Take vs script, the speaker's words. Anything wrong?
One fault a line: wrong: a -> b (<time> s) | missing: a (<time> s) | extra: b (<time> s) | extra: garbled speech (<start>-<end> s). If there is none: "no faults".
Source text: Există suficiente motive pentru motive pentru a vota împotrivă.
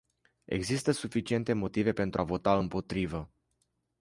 missing: motive pentru (2.2 s)